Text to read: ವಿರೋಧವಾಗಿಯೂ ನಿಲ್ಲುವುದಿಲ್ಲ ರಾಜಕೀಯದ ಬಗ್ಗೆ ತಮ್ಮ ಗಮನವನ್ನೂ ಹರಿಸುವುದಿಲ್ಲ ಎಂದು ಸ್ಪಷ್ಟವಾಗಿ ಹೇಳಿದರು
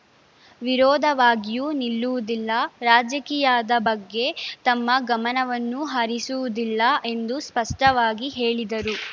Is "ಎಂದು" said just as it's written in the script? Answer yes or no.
yes